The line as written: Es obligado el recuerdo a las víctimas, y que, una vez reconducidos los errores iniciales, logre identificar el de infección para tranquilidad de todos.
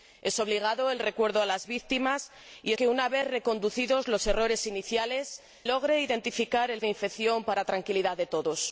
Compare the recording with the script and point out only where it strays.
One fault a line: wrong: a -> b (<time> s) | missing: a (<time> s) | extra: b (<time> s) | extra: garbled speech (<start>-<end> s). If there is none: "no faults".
no faults